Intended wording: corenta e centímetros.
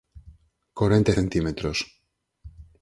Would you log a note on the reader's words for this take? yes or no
no